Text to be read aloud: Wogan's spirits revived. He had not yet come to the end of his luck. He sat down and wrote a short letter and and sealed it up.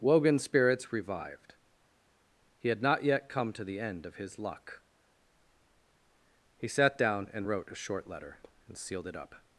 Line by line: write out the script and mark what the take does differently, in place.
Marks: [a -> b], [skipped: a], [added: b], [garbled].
Wogan's spirits revived. He had not yet come to the end of his luck. He sat down and wrote a short letter and [skipped: and] sealed it up.